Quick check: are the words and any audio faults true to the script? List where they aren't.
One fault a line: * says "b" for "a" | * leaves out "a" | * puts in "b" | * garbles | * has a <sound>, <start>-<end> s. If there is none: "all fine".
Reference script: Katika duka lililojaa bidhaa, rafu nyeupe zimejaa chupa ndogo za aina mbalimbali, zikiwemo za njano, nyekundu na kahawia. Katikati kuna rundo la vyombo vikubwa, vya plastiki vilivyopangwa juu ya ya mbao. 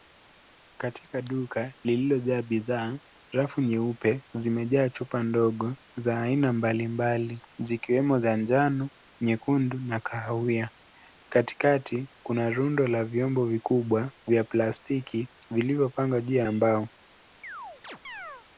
* has a chirp, 17.4-18.5 s